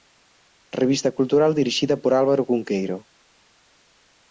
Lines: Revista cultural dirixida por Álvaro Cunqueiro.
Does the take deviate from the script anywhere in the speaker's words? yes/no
no